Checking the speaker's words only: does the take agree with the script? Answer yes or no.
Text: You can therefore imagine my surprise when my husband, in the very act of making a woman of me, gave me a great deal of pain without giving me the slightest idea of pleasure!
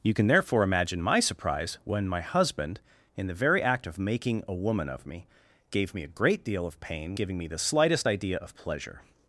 no